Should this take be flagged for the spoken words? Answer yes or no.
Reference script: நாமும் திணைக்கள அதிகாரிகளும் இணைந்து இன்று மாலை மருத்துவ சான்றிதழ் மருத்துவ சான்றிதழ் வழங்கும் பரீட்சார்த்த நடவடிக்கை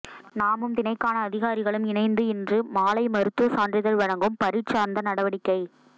yes